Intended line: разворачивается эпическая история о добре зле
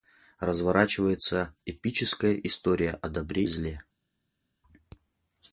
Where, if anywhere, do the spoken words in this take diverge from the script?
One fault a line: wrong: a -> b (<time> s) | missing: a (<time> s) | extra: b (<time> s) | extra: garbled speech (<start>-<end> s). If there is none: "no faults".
no faults